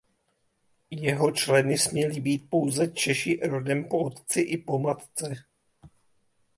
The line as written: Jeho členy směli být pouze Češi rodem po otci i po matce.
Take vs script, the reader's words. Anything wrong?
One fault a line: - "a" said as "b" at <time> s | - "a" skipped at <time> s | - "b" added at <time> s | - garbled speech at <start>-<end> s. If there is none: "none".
none